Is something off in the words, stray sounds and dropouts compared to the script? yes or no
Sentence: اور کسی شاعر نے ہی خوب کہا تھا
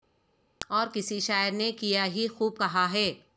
yes